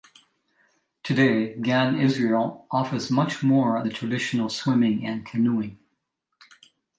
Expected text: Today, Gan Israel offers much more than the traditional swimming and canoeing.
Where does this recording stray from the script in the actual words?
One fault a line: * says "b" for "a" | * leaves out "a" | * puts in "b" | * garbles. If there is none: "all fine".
* leaves out "than"